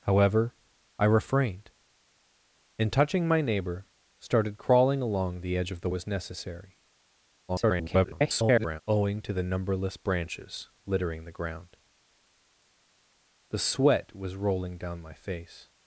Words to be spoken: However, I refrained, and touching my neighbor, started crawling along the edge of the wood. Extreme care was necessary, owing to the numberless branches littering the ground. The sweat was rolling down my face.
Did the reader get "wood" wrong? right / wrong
wrong